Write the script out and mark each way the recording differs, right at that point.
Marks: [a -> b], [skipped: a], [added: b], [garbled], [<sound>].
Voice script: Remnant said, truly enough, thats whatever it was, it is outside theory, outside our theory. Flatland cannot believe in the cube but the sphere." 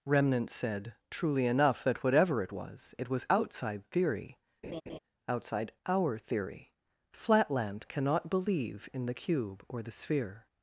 Remnant said, truly enough, [thats -> that] whatever it was, it [is -> was] outside theory, [laugh] outside our theory. Flatland cannot believe in the cube [but -> or] the sphere."